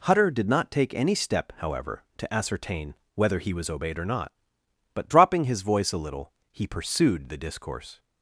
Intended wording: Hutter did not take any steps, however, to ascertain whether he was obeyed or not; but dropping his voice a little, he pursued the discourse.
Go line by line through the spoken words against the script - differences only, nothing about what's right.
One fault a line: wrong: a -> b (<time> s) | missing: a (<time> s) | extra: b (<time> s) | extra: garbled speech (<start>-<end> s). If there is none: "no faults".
wrong: steps -> step (1.1 s)